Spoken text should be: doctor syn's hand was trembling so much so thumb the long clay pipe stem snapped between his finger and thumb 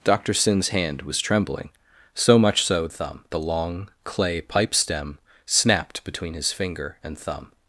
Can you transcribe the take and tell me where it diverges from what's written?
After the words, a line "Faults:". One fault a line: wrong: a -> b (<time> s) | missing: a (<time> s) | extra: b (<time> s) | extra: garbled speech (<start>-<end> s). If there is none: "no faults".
doctor syn's hand was trembling so much so thumb the long clay pipe stem snapped between his finger and thumb
Faults:
no faults